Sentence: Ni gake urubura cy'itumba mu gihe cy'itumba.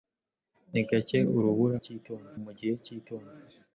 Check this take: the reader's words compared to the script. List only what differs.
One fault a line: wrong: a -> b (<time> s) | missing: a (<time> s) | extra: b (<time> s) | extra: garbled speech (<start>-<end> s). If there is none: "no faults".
no faults